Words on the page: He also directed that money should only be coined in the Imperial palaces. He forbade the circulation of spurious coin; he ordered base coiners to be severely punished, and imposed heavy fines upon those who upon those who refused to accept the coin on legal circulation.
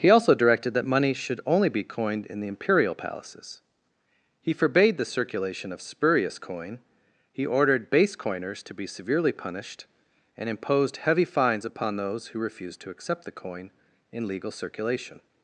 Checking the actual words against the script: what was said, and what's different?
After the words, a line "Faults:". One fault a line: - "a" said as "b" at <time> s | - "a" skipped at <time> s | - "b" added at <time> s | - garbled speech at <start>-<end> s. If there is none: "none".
He also directed that money should only be coined in the Imperial palaces. He forbade the circulation of spurious coin; he ordered base coiners to be severely punished, and imposed heavy fines upon those who refused to accept the coin in legal circulation.
Faults:
- "upon those who" skipped at 12.4 s
- "on" said as "in" at 14.1 s